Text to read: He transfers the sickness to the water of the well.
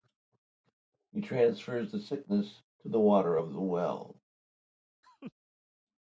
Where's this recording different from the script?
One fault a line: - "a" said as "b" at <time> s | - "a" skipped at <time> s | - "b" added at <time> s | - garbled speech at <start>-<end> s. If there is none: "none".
none